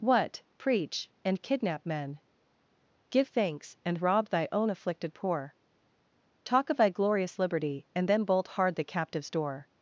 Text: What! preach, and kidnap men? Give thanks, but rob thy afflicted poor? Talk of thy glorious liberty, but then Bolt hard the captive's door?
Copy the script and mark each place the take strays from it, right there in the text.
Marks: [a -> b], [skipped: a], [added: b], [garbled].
What! preach, and kidnap men? Give thanks, [but -> and] rob thy [added: own] afflicted poor? Talk of thy glorious liberty, [but -> and] then Bolt hard the captive's door?